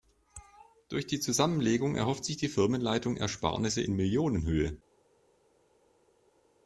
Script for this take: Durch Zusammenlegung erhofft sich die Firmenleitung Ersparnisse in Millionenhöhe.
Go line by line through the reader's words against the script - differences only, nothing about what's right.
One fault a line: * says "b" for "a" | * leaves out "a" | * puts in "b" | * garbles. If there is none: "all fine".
* puts in "die"